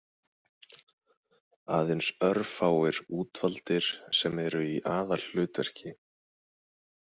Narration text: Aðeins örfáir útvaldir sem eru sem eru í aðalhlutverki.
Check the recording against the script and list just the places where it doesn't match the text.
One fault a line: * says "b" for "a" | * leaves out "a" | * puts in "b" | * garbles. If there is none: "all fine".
* leaves out "sem eru"